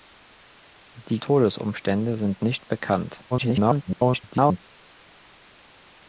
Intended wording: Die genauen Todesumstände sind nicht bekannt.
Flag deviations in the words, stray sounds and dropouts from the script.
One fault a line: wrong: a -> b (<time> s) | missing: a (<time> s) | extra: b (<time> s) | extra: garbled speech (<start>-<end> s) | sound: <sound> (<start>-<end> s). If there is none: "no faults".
missing: genauen (1.2 s)
extra: garbled speech (3.3-4.7 s)